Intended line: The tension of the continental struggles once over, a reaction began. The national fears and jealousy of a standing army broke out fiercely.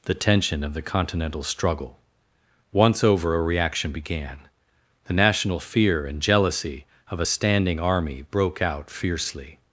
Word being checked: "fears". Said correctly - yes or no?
no